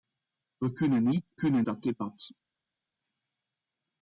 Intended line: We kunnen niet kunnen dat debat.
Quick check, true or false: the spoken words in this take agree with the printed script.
true